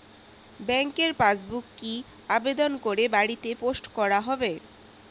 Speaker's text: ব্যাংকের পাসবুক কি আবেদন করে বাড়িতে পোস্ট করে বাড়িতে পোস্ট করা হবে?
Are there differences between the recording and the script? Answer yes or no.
yes